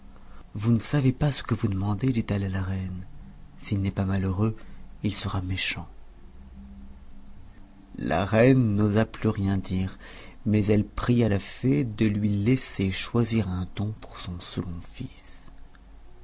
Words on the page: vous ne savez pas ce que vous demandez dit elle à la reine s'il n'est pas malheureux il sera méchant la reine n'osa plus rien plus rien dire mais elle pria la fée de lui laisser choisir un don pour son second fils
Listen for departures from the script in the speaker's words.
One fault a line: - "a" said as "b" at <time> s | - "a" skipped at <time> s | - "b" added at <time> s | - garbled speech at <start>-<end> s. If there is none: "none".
- "plus rien" skipped at 9.6 s